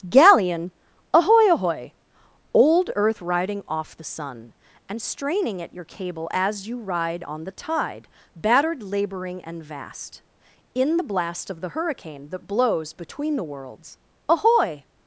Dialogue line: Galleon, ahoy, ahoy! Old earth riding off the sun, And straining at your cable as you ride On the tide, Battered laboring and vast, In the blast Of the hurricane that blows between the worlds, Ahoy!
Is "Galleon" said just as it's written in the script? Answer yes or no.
yes